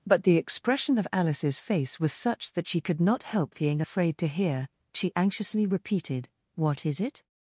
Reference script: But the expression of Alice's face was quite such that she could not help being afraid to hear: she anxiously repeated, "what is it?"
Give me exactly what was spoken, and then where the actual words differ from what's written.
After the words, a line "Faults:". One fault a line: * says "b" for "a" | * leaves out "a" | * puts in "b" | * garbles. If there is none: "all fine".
But the expression of Alice's face was such that she could not help being afraid to hear: she anxiously repeated, "what is it?"
Faults:
* leaves out "quite"